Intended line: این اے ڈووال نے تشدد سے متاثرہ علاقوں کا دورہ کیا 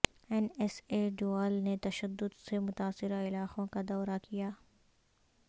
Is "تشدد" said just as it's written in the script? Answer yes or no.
yes